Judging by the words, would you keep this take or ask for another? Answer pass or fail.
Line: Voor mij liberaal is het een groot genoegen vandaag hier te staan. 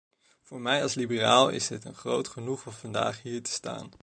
fail